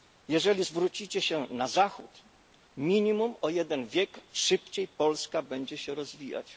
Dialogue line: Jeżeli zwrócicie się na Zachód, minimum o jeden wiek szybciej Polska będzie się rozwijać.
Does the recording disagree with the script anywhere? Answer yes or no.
no